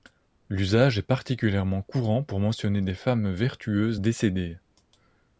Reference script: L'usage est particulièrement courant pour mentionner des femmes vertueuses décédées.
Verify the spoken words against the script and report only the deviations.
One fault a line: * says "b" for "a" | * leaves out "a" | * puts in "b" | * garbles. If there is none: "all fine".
all fine